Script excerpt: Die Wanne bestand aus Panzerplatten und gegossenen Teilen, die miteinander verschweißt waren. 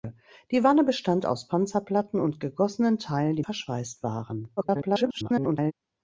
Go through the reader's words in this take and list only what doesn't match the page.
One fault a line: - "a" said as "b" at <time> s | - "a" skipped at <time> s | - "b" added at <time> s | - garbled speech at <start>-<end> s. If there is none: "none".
- "miteinander" skipped at 3.4 s
- garbled speech at 4.6-5.7 s